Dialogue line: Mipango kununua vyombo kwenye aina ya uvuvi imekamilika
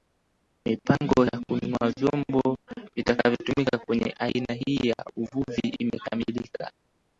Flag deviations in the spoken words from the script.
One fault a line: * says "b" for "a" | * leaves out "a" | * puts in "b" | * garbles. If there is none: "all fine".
* puts in "ya"
* puts in "vitakavyotumika"
* puts in "hii"